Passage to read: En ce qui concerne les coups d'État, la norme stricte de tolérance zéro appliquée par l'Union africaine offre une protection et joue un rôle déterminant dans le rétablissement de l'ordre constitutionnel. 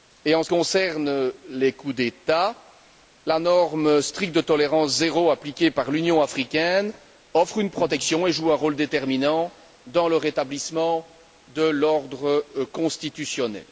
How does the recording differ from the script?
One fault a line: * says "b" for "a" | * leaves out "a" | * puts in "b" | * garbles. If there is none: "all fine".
* leaves out "qui"